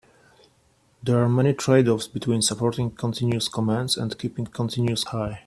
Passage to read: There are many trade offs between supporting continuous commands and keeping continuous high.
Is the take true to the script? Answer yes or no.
yes